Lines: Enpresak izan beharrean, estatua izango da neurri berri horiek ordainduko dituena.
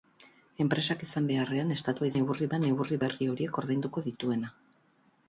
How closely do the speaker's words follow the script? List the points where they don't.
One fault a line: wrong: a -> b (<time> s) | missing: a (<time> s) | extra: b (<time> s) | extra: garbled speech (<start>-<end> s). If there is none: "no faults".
wrong: izango -> neurri (2.2 s)